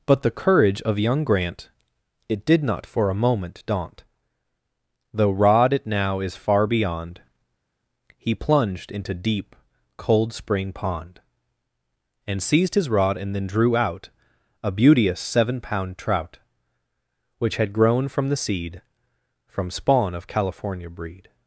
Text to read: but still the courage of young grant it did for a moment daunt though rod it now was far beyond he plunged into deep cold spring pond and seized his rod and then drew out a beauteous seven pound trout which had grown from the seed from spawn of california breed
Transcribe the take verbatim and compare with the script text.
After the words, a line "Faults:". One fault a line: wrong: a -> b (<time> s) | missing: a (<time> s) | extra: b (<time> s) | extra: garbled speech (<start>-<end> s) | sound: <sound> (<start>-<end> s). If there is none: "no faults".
but the courage of young grant it did not for a moment daunt though rod it now is far beyond he plunged into deep cold spring pond and seized his rod and then drew out a beauteous seven pound trout which had grown from the seed from spawn of california breed
Faults:
missing: still (0.2 s)
extra: not (2.6 s)
wrong: was -> is (6.2 s)